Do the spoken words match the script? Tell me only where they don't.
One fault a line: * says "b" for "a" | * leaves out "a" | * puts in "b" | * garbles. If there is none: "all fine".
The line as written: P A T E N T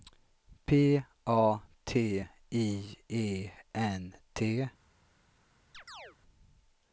* puts in "I"